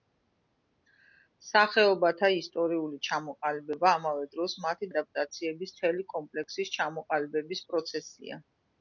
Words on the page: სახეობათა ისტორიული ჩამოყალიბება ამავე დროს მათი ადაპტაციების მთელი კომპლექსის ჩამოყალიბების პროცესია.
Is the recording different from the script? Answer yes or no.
no